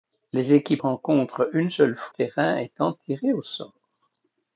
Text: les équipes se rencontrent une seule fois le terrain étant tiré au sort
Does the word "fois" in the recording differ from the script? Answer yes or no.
yes